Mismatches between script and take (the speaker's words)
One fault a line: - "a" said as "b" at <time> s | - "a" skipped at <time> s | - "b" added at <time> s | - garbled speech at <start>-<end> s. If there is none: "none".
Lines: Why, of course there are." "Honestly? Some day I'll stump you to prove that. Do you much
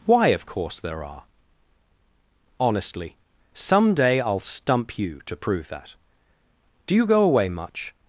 - "go away" added at 7.1 s